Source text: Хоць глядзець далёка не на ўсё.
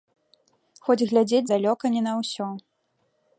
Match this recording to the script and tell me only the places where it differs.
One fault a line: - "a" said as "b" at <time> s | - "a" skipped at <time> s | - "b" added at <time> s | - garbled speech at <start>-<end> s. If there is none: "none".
none